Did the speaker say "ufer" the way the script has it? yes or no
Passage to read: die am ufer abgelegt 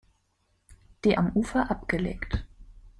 yes